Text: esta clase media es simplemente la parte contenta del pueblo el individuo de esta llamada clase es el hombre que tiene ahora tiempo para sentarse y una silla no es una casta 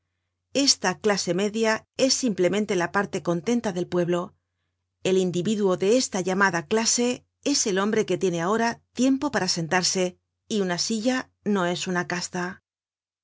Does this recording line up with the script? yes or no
yes